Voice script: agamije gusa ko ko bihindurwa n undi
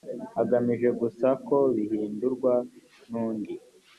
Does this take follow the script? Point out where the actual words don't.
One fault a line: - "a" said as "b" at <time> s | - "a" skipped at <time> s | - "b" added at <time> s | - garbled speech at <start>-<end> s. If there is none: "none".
- "ko" skipped at 1.6 s